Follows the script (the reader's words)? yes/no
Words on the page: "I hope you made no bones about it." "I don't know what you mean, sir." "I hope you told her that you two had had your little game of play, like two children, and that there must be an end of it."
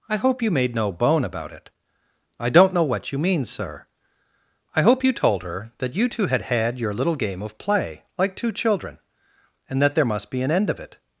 no